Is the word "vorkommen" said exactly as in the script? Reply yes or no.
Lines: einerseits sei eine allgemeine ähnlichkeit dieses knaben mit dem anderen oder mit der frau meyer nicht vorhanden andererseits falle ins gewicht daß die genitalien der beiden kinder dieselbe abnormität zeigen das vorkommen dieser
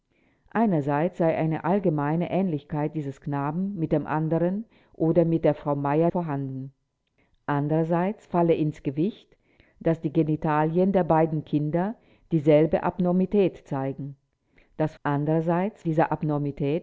no